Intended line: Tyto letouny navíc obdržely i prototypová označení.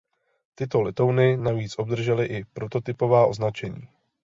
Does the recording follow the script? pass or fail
pass